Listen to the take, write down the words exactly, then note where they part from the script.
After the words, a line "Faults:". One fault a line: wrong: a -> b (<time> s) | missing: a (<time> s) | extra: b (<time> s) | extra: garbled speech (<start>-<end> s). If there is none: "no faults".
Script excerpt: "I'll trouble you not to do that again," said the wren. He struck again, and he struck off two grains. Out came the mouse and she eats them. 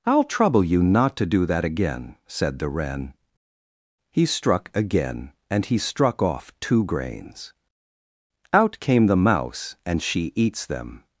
"I'll trouble you not to do that again," said the wren. He struck again, and he struck off two grains. Out came the mouse and she eats them.
Faults:
no faults